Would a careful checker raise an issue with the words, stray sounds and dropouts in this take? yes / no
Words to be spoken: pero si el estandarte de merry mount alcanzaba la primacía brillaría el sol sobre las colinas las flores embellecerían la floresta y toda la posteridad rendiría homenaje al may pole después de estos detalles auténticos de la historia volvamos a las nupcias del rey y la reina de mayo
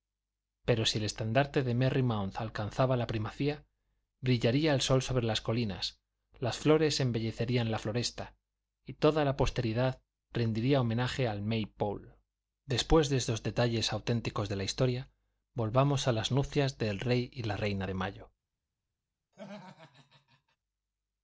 yes